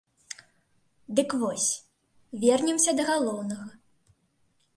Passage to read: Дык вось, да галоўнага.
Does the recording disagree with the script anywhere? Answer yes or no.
yes